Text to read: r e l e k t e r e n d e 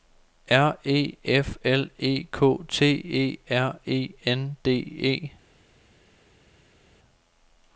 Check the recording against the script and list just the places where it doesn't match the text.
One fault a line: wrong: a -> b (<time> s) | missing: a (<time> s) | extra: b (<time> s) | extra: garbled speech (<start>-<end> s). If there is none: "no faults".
extra: f (1.2 s)